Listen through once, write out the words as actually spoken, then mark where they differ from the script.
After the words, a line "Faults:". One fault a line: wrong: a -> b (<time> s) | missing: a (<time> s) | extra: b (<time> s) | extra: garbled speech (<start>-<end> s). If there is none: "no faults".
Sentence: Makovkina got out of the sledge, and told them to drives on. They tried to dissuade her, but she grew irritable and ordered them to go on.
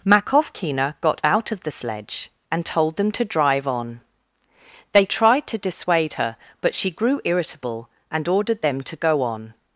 Makovkina got out of the sledge, and told them to drive on. They tried to dissuade her, but she grew irritable and ordered them to go on.
Faults:
wrong: drives -> drive (3.2 s)